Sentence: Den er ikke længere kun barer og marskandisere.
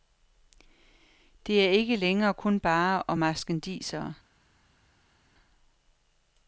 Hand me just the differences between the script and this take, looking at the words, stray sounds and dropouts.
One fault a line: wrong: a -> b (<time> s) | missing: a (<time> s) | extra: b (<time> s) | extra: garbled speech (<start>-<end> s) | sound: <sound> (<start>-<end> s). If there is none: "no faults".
wrong: Den -> Det (1.5 s)